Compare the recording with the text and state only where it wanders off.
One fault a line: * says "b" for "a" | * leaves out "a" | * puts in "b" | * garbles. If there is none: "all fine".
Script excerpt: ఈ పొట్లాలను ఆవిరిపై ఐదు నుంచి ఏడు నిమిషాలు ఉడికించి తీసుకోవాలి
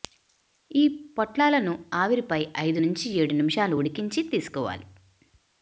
all fine